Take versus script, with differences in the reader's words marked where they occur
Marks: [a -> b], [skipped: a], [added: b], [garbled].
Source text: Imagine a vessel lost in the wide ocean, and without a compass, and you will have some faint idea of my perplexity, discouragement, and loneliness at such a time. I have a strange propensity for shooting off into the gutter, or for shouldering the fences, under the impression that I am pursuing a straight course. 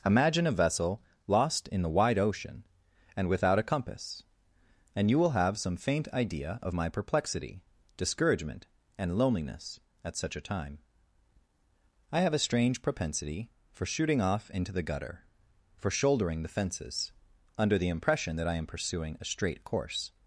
Imagine a vessel lost in the wide ocean, and without a compass, and you will have some faint idea of my perplexity, discouragement, and loneliness at such a time. I have a strange propensity for shooting off into the gutter, [skipped: or] for shouldering the fences, under the impression that I am pursuing a straight course.